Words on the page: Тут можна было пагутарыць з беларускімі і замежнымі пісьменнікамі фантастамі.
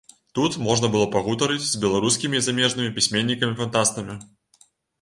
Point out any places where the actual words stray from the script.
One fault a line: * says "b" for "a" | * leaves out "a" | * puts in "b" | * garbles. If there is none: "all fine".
all fine